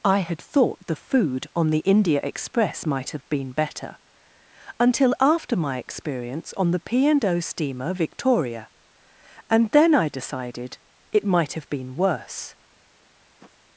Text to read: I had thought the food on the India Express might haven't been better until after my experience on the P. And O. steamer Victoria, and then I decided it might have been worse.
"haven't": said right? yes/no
no